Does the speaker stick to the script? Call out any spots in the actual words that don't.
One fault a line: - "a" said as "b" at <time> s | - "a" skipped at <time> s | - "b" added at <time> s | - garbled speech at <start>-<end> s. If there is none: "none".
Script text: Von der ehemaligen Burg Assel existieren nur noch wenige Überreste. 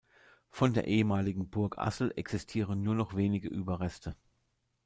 none